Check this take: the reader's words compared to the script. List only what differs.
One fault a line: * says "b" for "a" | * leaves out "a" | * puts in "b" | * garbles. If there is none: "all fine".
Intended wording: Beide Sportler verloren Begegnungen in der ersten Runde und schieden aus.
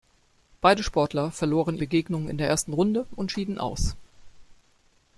all fine